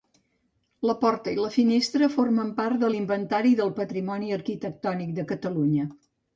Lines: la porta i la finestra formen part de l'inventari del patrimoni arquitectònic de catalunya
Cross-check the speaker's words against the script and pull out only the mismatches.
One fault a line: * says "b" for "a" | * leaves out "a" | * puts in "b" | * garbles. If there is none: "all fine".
all fine